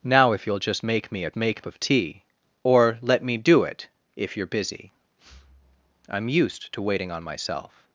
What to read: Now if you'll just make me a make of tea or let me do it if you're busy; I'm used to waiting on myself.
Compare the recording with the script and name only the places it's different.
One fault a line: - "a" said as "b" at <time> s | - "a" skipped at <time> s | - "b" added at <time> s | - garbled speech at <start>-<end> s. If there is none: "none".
none